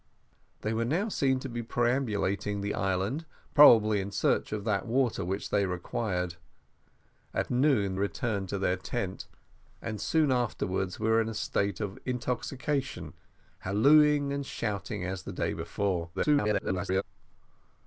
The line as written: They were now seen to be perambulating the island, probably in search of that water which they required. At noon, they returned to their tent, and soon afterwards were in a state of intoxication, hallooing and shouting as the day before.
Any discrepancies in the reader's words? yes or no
yes